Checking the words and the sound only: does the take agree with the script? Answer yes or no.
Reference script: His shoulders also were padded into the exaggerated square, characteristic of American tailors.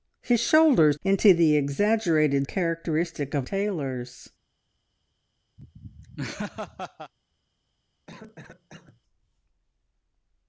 no